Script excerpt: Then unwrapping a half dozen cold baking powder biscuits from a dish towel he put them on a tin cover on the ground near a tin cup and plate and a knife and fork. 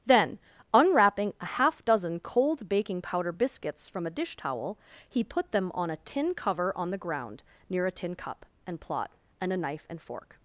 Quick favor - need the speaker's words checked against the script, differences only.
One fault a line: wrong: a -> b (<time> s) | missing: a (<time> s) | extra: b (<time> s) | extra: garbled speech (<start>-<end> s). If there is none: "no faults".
wrong: plate -> plot (8.8 s)